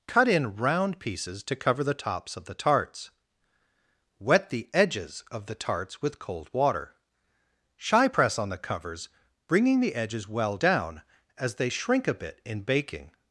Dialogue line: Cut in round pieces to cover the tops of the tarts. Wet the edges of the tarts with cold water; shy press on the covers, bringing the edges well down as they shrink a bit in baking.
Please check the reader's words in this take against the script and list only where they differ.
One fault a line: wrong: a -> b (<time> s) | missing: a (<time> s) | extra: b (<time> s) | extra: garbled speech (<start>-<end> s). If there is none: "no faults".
no faults